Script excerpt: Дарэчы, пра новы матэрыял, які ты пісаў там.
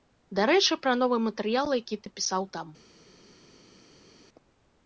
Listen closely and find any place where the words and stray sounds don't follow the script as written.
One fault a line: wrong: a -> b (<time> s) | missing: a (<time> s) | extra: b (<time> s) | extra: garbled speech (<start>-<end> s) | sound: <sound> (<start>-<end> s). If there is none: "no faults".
no faults